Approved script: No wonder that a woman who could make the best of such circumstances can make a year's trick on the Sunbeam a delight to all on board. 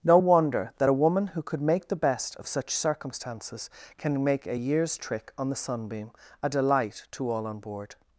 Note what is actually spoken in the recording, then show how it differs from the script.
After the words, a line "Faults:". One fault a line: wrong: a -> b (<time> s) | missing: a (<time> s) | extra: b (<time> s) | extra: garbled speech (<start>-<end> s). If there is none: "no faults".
No wonder that a woman who could make the best of such circumstances can make a year's trick on the Sunbeam a delight to all on board.
Faults:
no faults